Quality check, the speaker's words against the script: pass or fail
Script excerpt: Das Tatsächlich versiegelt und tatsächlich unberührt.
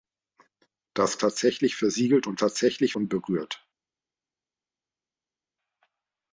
pass